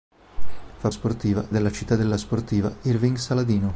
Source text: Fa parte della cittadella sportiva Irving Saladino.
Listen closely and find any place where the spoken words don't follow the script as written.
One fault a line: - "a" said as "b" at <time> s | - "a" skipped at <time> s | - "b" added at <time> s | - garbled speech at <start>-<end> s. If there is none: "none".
- "parte" said as "sportiva" at 0.9 s